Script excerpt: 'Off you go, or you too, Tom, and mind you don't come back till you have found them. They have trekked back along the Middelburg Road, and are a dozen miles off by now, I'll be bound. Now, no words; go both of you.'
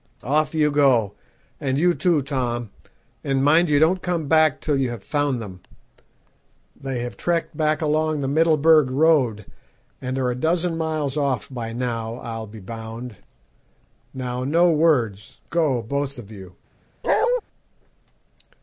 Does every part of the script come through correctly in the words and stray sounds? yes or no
no